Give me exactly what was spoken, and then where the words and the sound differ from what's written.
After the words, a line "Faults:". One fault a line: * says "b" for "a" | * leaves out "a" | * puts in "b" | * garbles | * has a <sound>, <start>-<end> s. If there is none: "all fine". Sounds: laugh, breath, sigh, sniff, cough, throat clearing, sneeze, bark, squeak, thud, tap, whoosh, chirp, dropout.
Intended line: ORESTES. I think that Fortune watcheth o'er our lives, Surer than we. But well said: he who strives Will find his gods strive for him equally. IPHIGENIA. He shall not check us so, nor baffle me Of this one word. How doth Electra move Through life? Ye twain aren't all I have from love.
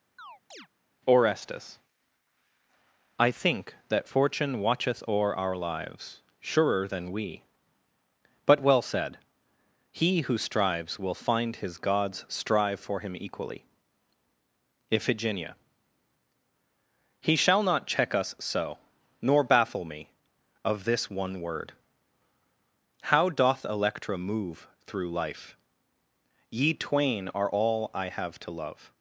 ORESTES. I think that Fortune watcheth o'er our lives, Surer than we. But well said: he who strives Will find his gods strive for him equally. IPHIGENIA. He shall not check us so, nor baffle me Of this one word. How doth Electra move Through life? Ye twain are all I have to love.
Faults:
* has a chirp, 0.2-0.7 s
* says "are" for "aren't"
* says "to" for "from"